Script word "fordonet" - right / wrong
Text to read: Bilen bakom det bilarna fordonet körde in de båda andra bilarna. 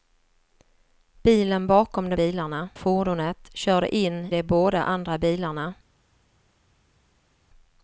right